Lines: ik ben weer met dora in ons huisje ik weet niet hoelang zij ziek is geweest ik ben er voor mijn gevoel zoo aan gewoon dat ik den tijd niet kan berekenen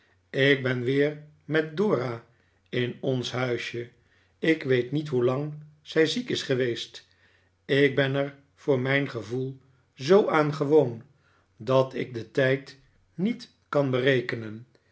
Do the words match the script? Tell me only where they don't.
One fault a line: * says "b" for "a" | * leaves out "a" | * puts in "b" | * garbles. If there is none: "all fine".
all fine